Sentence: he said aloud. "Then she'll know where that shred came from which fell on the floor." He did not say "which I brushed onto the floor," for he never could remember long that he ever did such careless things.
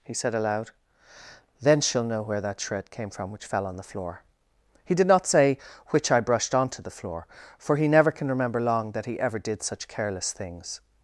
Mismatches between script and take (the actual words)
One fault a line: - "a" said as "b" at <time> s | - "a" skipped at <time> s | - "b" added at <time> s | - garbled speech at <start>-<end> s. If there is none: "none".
- "could" said as "can" at 8.1 s